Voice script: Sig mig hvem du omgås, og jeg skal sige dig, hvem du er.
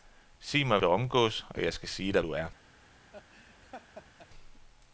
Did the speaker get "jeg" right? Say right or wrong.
right